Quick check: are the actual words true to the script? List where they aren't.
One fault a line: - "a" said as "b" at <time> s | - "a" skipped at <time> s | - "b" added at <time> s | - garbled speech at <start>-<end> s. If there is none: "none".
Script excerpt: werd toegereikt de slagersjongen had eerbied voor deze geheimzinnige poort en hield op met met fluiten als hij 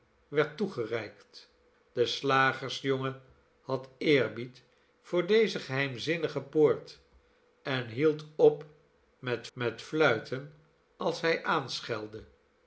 none